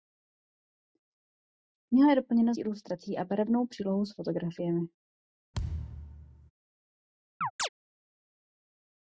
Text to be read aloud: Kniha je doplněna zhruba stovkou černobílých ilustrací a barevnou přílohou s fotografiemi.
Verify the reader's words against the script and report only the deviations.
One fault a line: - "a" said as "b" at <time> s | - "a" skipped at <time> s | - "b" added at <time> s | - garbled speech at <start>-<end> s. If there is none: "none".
- "zhruba stovkou černobílých" skipped at 2.5 s